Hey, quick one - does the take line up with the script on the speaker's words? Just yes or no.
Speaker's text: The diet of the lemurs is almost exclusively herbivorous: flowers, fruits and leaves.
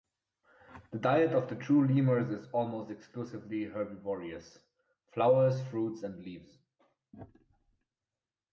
no